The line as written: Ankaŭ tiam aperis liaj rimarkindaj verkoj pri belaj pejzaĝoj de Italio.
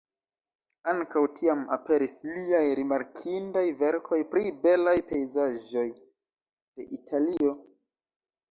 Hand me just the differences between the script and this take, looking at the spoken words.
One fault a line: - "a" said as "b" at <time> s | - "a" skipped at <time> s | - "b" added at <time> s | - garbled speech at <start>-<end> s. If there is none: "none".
none